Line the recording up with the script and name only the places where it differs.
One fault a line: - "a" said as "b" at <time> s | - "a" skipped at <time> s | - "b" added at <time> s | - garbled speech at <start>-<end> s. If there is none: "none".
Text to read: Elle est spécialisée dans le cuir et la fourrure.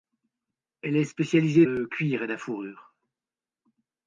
- "dans" skipped at 1.7 s